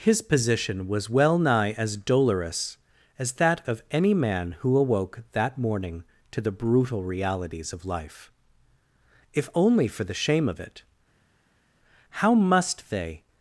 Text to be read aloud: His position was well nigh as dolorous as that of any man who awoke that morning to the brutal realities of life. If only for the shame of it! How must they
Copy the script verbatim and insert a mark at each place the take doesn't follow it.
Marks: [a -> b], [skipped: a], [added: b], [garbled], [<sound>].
His position was well nigh as dolorous as that of any man who awoke that morning to the brutal realities of life. If only for the shame of it! How must they